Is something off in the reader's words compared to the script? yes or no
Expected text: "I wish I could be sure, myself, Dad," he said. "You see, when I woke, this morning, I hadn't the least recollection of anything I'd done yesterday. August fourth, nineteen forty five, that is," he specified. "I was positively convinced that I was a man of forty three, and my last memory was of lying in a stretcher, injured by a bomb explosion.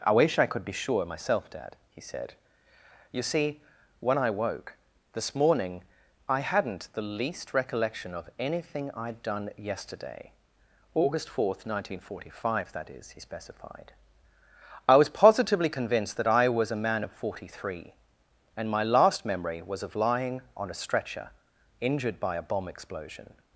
yes